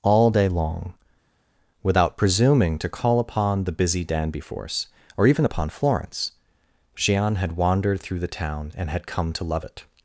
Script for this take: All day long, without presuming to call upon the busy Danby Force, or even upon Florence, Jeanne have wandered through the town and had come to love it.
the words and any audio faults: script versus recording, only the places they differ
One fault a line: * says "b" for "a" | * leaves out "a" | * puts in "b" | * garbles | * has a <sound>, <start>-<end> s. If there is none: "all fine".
* says "had" for "have"